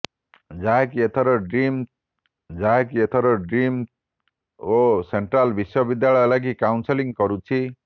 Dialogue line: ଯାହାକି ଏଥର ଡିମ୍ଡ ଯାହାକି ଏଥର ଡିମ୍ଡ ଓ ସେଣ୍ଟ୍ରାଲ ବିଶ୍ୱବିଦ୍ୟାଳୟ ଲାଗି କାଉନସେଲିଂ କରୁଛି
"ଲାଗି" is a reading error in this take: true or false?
false